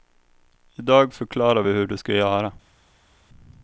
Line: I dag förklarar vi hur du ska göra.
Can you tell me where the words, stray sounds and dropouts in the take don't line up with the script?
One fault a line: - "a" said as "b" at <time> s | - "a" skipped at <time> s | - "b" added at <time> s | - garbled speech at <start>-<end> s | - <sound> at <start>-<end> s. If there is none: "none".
none